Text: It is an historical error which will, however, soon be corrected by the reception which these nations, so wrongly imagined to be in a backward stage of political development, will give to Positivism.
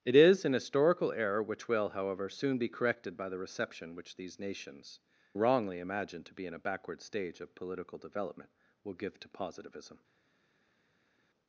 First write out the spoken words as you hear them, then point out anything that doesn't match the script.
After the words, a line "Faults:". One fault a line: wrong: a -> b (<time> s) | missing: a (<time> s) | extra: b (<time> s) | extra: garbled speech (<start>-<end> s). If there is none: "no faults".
It is an historical error which will, however, soon be corrected by the reception which these nations, wrongly imagined to be in a backward stage of political development, will give to Positivism.
Faults:
missing: so (5.0 s)